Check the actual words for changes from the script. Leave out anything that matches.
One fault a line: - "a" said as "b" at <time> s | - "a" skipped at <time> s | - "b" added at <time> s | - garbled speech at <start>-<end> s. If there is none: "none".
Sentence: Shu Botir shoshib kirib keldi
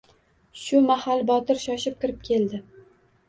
- "mahal" added at 0.8 s